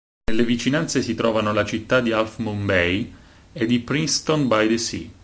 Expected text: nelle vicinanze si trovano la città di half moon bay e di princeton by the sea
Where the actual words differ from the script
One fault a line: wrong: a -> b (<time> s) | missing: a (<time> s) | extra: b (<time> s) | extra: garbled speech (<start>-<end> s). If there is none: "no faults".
no faults